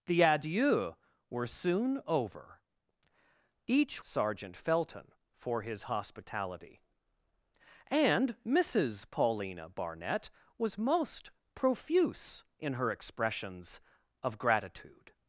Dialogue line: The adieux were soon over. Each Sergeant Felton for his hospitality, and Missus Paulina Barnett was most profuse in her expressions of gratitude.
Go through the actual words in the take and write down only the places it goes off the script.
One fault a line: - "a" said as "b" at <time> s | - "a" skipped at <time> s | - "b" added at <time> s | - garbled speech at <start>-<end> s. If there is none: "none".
none